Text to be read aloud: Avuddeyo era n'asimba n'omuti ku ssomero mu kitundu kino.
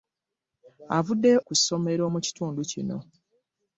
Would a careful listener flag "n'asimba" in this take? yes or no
yes